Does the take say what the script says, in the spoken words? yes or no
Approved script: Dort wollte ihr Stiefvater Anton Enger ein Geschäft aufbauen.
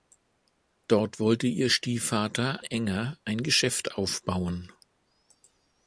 no